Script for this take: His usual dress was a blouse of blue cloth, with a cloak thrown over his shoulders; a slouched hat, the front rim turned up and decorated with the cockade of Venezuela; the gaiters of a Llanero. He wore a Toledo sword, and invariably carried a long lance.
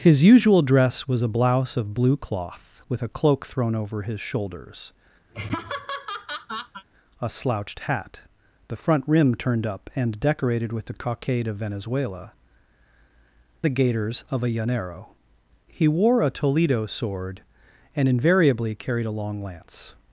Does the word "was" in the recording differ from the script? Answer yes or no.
no